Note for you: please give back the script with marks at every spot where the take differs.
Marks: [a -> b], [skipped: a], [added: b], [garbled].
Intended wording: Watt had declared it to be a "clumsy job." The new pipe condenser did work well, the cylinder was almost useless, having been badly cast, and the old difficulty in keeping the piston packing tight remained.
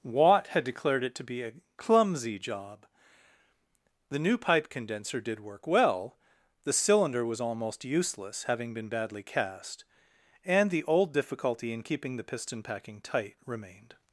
Watt had declared it to be a "clumsy job." The new pipe condenser did work well, the cylinder was almost useless, having been badly cast, and the old difficulty in keeping the piston packing tight remained.